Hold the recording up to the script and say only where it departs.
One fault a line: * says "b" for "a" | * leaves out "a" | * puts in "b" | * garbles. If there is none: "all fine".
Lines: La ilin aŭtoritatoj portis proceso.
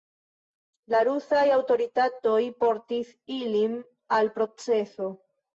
* says "rusaj" for "ilin"
* puts in "ilin al"